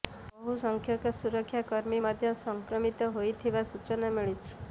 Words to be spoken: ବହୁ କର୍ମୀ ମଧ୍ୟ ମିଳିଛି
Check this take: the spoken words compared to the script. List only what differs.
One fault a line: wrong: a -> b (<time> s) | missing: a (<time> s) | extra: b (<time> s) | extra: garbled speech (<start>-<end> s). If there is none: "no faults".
extra: ସଂଖ୍ୟକ ସୁରକ୍ଷା (0.6 s)
extra: ସଂକ୍ରମିତ ହୋଇଥିବା ସୂଚନା (2.4 s)